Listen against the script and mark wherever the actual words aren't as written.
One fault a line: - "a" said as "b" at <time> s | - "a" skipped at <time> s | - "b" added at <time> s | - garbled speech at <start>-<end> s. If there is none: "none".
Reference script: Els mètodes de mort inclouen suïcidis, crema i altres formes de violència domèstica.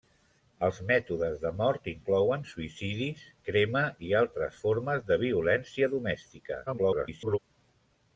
- garbled speech at 6.7-7.4 s